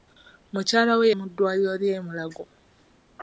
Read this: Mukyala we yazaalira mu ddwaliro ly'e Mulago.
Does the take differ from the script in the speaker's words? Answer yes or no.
yes